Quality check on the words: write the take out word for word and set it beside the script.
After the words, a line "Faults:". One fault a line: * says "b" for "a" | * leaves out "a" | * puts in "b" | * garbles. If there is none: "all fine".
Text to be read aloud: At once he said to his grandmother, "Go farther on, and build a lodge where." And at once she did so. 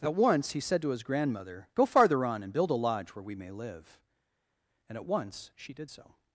At once he said to his grandmother, "Go farther on, and build a lodge where we may live." And at once she did so.
Faults:
* puts in "we may live"